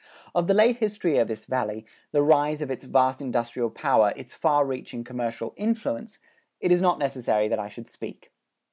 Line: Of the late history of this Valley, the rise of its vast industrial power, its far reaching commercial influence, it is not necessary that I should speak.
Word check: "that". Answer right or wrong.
right